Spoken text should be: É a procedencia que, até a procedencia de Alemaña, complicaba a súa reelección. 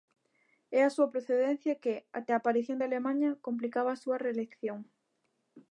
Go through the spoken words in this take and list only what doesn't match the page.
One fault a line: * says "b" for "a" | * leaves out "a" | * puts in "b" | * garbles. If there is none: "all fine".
* puts in "súa"
* says "aparición" for "procedencia"